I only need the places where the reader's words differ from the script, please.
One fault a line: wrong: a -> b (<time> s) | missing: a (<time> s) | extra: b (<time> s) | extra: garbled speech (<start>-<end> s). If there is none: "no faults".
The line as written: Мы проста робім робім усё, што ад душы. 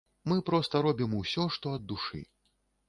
missing: робім (1.1 s)